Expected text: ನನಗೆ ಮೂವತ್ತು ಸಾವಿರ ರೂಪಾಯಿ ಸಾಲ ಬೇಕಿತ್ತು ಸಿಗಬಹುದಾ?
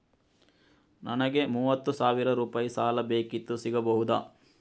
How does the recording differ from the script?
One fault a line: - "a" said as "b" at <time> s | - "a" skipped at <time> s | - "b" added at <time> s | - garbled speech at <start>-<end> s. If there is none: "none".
none